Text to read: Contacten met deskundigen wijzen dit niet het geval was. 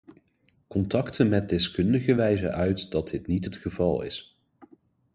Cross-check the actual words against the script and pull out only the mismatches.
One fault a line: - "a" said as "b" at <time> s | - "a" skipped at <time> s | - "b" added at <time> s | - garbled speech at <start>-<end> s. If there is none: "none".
- "uit dat" added at 2.5 s
- "was" said as "is" at 4.0 s